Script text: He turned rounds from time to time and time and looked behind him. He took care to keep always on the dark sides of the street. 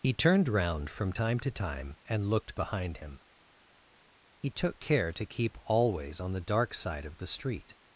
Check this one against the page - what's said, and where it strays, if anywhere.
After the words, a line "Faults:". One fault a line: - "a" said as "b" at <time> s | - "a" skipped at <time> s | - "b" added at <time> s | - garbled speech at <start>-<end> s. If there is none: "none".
He turned round from time to time and looked behind him. He took care to keep always on the dark side of the street.
Faults:
- "rounds" said as "round" at 0.5 s
- "time and" skipped at 2.3 s
- "sides" said as "side" at 6.7 s